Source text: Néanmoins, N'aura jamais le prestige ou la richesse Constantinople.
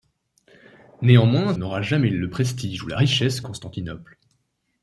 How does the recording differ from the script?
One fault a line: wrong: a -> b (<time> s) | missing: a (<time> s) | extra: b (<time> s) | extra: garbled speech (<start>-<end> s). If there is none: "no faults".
no faults